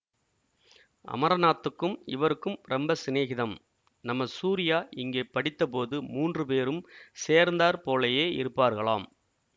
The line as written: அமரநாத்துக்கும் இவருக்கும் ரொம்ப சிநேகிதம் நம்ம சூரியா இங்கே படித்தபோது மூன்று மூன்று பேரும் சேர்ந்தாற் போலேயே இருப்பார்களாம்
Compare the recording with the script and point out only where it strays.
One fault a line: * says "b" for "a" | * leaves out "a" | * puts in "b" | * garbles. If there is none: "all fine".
* leaves out "மூன்று"